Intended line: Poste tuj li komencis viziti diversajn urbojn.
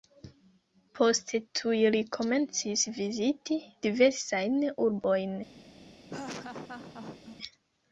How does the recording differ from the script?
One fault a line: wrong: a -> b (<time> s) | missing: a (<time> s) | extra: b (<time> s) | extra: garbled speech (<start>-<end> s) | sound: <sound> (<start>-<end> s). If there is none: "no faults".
sound: laugh (6.1-7.4 s)